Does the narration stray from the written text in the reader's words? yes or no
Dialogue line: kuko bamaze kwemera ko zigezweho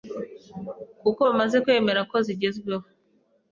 no